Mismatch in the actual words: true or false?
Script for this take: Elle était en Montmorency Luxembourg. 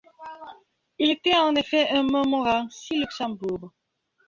true